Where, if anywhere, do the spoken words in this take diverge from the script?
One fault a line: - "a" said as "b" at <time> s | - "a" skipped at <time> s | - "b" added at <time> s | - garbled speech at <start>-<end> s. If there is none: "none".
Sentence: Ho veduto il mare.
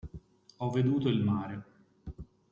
none